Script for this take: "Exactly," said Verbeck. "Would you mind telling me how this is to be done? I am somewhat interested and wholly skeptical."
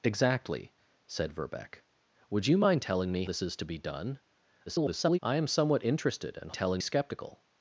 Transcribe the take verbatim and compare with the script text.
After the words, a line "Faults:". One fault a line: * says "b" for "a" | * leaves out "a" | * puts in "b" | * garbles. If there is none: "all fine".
"Exactly," said Verbeck. "Would you mind telling me this is to be done? [garbled] I am somewhat interested and telling skeptical."
Faults:
* leaves out "how"
* garbles
* says "telling" for "wholly"